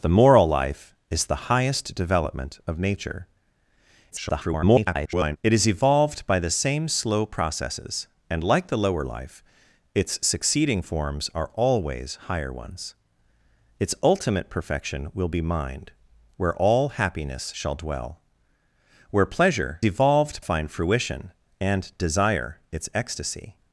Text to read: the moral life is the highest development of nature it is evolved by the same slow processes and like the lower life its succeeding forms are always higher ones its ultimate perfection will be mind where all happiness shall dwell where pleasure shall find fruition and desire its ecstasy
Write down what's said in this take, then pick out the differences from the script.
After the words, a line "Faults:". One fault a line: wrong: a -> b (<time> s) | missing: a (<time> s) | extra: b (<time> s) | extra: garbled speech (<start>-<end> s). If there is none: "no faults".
the moral life is the highest development of nature [garbled] it is evolved by the same slow processes and like the lower life its succeeding forms are always higher ones its ultimate perfection will be mind where all happiness shall dwell where pleasure evolved find fruition and desire its ecstasy
Faults:
extra: garbled speech (4.1-5.4 s)
wrong: shall -> evolved (19.8 s)